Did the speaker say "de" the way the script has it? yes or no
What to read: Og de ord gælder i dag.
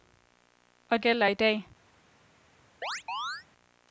no